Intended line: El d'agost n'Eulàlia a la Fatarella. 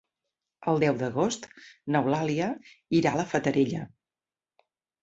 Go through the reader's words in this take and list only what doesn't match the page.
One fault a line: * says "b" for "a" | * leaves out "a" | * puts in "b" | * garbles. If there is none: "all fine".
* puts in "deu"
* puts in "irà"